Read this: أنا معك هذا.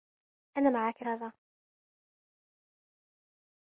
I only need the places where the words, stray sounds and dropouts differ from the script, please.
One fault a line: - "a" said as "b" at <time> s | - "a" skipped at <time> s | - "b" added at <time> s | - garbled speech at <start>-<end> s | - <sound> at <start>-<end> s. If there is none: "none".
none